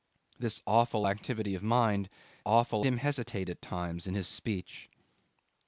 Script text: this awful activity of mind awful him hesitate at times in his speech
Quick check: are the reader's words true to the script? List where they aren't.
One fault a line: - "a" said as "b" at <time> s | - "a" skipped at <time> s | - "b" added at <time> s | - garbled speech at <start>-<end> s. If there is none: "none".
none